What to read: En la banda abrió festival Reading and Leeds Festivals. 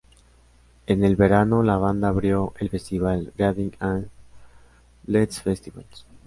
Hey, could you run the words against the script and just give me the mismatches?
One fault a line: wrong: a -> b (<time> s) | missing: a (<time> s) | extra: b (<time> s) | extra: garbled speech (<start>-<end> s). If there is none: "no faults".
extra: el verano (1.0 s)
extra: el (2.6 s)